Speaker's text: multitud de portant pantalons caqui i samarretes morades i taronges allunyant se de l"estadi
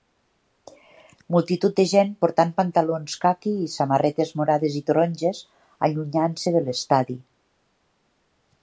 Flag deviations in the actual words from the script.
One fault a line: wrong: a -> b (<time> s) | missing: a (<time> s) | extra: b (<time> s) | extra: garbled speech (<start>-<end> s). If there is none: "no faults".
extra: gent (1.9 s)